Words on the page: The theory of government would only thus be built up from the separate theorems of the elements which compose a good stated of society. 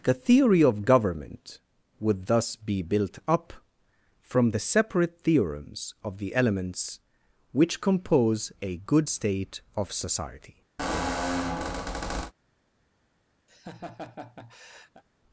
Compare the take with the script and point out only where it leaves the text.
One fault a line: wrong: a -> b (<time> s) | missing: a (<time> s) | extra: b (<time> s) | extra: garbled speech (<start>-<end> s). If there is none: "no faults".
missing: only (2.2 s)
wrong: stated -> state (9.1 s)